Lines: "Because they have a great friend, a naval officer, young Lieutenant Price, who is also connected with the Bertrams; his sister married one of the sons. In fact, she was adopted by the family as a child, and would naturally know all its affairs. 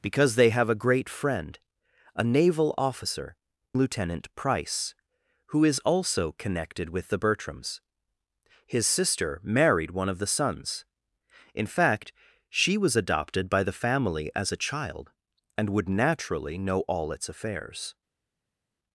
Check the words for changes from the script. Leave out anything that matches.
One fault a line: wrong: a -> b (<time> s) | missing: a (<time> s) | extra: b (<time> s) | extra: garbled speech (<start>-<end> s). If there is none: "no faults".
missing: young (3.4 s)